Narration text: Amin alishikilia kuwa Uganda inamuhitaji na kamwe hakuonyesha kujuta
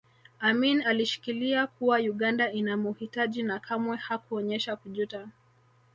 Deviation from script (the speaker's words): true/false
false